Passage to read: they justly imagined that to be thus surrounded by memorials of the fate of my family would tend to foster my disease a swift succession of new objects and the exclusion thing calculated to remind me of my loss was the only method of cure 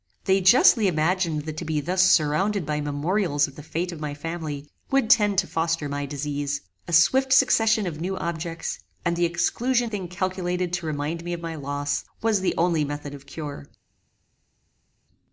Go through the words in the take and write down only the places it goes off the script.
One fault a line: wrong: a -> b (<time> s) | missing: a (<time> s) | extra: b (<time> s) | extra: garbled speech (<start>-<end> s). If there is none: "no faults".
no faults